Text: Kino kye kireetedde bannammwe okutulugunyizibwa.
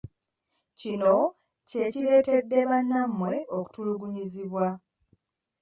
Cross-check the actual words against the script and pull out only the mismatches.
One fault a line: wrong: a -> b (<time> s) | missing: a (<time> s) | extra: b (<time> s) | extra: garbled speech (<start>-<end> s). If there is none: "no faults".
no faults